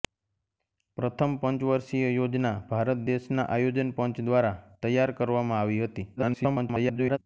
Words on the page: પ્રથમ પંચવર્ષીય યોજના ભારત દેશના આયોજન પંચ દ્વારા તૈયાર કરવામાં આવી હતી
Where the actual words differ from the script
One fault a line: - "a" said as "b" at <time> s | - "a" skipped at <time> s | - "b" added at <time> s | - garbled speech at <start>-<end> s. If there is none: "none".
- garbled speech at 6.2-7.2 s